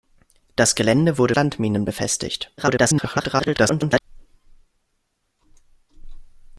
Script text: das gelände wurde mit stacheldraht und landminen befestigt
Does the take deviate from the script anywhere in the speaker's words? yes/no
yes